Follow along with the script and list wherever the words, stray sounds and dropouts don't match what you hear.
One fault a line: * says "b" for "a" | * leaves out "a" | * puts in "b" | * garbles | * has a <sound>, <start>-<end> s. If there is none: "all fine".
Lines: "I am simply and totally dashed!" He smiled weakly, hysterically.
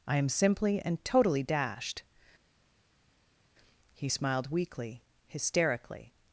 all fine